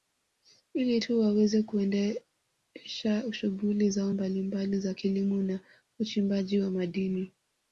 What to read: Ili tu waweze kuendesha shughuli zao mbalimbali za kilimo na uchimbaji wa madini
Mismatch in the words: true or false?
false